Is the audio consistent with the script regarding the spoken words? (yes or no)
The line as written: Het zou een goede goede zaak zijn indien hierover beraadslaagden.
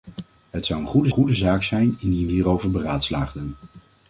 yes